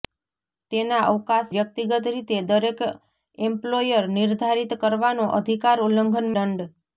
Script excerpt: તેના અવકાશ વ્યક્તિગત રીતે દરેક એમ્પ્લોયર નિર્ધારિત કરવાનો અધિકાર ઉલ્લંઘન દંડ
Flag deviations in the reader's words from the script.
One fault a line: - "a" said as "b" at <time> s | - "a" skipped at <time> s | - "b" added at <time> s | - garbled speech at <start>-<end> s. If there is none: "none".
none